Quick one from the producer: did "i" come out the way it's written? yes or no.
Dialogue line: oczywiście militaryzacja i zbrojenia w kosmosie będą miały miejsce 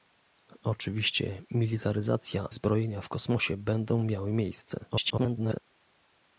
no